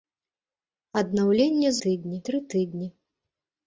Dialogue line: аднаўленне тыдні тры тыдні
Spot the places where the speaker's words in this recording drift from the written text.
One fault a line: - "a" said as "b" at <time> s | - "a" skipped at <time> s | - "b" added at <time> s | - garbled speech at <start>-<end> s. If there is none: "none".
none